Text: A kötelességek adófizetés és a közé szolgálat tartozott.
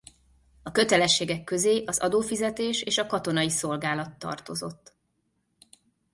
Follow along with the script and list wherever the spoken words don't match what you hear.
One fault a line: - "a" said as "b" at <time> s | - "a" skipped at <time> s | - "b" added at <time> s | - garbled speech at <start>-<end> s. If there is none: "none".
- "közé az" added at 1.4 s
- "közé" said as "katonai" at 3.1 s